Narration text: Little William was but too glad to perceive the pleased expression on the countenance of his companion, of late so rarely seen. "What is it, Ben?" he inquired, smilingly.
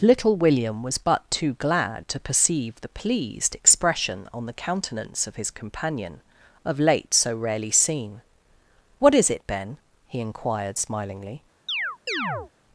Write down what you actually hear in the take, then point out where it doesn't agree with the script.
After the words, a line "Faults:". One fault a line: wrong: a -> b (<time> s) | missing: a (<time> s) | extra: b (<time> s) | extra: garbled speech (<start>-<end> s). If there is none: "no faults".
Little William was but too glad to perceive the pleased expression on the countenance of his companion, of late so rarely seen. "What is it, Ben?" he inquired, smilingly.
Faults:
no faults